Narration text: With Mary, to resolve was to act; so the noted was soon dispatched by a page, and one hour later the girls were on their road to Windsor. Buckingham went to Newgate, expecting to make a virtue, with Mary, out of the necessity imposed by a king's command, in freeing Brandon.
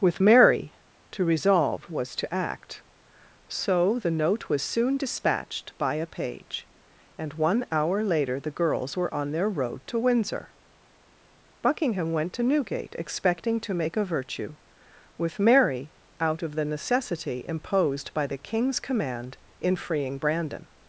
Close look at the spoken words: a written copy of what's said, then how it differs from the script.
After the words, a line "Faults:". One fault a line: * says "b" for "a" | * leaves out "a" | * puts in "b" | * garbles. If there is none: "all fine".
With Mary, to resolve was to act; so the note was soon dispatched by a page, and one hour later the girls were on their road to Windsor. Buckingham went to Newgate, expecting to make a virtue, with Mary, out of the necessity imposed by the king's command, in freeing Brandon.
Faults:
* says "note" for "noted"
* says "the" for "a"